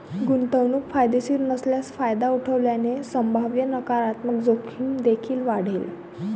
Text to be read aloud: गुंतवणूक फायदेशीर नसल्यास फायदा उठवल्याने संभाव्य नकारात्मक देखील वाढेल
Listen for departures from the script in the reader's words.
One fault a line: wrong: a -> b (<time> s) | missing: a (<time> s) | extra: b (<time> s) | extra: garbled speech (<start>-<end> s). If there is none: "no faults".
extra: जोखीम (4.4 s)